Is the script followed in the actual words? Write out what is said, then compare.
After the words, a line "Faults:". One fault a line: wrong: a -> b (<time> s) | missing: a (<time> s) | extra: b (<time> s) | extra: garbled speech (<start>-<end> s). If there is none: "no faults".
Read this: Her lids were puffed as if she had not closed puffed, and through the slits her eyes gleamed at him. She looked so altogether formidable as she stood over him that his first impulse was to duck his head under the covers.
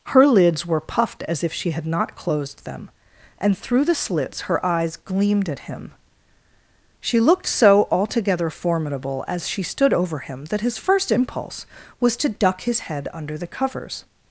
Her lids were puffed as if she had not closed them, and through the slits her eyes gleamed at him. She looked so altogether formidable as she stood over him that his first impulse was to duck his head under the covers.
Faults:
wrong: puffed -> them (2.6 s)